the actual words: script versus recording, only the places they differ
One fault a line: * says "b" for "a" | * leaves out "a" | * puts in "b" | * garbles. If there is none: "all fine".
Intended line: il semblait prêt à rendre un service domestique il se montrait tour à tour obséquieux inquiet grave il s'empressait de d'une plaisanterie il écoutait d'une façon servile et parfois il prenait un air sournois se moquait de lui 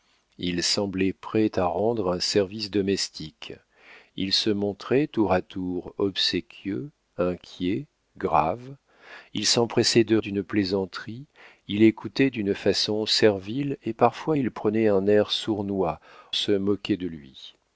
all fine